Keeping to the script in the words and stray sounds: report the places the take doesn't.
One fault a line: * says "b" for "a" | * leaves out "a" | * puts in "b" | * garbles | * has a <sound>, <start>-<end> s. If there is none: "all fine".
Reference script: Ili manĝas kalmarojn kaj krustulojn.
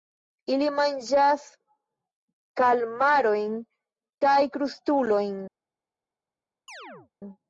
* has a chirp, 6.7-7.1 s